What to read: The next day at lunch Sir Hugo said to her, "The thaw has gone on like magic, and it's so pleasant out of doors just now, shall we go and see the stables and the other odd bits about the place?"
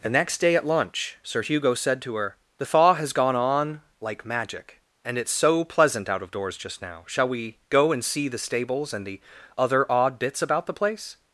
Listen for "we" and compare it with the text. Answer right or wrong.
right